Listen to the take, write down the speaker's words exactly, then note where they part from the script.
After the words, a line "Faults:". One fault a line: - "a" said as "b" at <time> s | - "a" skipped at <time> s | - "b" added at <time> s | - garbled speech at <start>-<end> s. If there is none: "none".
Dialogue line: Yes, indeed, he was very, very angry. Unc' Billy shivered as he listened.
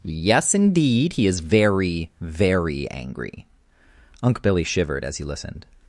Yes, indeed, he is very, very angry. Unc' Billy shivered as he listened.
Faults:
- "was" said as "is" at 1.3 s